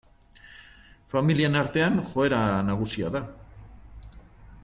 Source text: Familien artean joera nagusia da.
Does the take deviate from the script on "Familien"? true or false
false